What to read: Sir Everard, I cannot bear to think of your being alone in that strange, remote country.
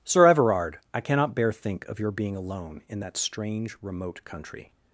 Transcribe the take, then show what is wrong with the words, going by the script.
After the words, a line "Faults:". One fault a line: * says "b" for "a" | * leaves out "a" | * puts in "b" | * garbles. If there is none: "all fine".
Sir Everard, I cannot bear think of your being alone in that strange, remote country.
Faults:
* leaves out "to"